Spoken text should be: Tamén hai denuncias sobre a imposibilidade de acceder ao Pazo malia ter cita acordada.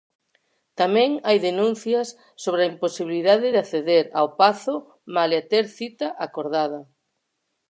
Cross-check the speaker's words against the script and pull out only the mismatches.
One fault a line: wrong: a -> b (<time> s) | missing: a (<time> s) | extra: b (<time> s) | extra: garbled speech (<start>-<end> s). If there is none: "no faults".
no faults